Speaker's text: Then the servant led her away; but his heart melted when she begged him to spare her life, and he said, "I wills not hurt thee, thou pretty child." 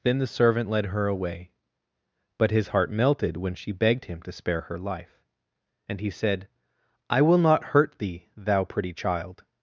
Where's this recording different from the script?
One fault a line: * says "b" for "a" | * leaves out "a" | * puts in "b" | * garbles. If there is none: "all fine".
* says "will" for "wills"